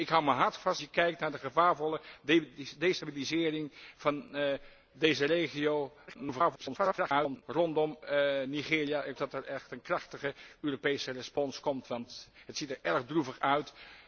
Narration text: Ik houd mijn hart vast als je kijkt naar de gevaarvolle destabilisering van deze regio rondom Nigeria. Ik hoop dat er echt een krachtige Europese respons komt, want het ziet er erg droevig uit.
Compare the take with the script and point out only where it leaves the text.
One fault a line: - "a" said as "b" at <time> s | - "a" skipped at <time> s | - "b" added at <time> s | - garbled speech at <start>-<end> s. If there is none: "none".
- "als" skipped at 0.8 s
- garbled speech at 6.1-7.4 s
- "hoop" skipped at 9.2 s